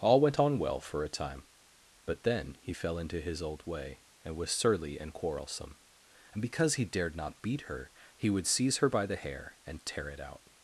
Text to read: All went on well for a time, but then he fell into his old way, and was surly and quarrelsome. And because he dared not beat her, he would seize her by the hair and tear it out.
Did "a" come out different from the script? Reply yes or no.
no